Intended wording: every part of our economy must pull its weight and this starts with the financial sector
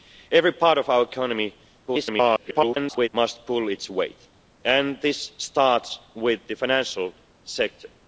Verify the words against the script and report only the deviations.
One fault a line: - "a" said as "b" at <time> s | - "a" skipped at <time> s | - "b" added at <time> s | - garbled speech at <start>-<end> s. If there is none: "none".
- garbled speech at 1.9-3.1 s